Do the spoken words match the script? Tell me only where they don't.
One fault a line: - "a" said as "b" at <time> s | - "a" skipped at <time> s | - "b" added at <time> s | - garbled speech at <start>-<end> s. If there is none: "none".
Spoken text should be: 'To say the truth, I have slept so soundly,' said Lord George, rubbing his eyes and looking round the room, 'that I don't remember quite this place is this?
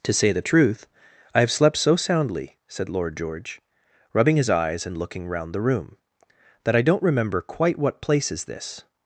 - "this" said as "what" at 7.8 s